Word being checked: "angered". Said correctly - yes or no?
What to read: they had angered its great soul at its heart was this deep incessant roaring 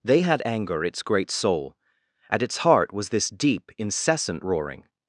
no